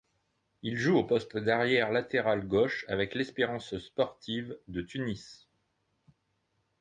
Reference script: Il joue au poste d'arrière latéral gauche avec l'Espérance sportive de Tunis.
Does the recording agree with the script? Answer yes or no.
yes